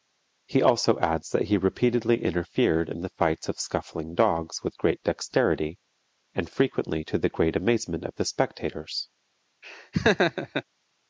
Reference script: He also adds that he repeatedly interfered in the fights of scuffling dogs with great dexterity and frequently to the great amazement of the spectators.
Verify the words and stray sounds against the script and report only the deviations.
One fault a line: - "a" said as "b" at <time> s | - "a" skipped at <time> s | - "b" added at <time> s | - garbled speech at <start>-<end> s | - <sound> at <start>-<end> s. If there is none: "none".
- laugh at 9.6-10.6 s